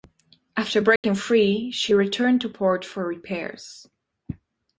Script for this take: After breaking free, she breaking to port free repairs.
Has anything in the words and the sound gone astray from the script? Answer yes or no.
yes